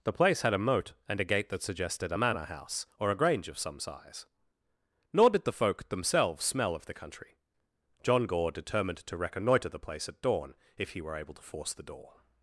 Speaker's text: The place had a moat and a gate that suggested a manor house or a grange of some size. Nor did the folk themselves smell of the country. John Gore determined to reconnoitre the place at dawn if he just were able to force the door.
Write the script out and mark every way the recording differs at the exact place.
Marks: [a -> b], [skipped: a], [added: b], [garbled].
The place had a moat and a gate that suggested a manor house or a grange of some size. Nor did the folk themselves smell of the country. John Gore determined to reconnoitre the place at dawn if he [skipped: just] were able to force the door.